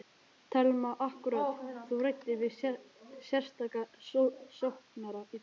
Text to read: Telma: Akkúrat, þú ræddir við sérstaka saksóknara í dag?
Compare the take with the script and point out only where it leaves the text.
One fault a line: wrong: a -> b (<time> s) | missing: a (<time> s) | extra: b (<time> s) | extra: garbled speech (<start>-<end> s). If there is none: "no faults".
no faults